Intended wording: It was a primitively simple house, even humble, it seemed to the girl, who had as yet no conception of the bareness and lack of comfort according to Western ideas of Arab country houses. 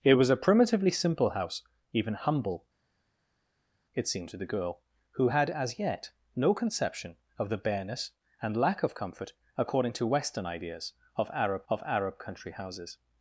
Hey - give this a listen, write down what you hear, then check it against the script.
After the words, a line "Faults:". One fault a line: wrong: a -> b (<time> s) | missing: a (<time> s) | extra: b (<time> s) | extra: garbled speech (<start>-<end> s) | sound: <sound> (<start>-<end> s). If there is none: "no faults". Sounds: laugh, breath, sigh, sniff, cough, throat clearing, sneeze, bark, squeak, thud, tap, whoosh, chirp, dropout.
It was a primitively simple house, even humble, it seemed to the girl, who had as yet no conception of the bareness and lack of comfort according to Western ideas of Arab of Arab country houses.
Faults:
extra: of Arab (11.7 s)